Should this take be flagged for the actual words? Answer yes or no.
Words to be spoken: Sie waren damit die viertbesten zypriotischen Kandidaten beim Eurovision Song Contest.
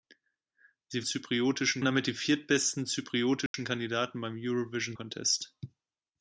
yes